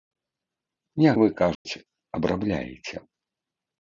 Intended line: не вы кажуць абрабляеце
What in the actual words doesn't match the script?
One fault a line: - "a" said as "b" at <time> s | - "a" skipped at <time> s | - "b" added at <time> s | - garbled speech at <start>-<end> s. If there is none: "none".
none